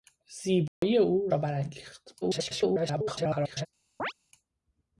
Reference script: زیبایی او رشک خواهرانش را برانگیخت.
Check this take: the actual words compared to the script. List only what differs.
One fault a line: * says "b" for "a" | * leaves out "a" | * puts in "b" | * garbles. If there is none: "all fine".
* leaves out "رشک خواهرانش"
* garbles